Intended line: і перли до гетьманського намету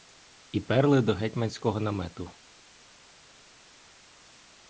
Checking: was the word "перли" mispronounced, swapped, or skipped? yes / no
no